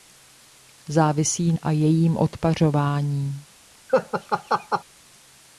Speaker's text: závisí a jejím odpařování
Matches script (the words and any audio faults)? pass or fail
fail